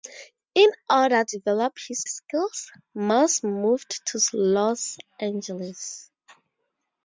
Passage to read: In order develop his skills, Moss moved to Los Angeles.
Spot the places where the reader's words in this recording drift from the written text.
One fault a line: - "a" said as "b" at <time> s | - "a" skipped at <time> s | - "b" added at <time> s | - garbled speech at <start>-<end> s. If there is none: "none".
none